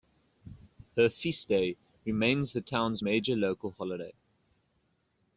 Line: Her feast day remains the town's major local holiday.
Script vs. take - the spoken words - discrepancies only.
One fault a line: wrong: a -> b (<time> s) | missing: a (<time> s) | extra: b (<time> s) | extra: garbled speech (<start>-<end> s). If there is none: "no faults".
no faults